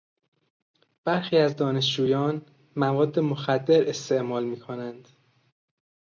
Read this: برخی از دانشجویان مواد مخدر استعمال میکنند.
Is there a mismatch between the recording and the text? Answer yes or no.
no